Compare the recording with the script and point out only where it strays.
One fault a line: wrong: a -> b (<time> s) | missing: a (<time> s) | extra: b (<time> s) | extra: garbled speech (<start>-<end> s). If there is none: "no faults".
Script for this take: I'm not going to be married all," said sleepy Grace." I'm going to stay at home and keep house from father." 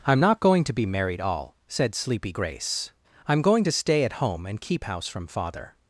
no faults